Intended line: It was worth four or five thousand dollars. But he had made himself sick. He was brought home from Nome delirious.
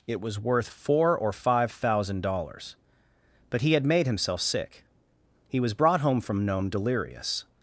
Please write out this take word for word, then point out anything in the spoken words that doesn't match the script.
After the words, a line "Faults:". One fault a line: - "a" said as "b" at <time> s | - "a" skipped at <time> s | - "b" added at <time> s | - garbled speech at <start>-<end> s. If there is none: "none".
It was worth four or five thousand dollars. But he had made himself sick. He was brought home from Nome delirious.
Faults:
none